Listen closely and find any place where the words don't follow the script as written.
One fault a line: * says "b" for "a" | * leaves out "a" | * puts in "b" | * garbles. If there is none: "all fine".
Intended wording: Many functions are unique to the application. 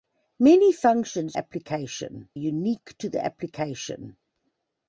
* says "application" for "are"